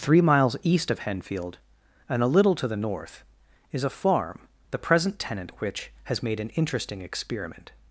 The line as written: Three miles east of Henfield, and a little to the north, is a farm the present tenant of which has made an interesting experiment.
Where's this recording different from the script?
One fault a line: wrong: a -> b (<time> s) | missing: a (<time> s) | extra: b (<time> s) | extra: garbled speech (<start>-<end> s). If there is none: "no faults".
missing: of (5.5 s)